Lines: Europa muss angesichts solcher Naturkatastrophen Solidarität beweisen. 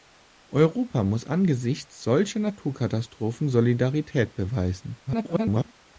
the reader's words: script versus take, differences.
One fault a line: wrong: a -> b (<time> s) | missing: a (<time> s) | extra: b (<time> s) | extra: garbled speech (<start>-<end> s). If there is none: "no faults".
extra: garbled speech (5.1-5.7 s)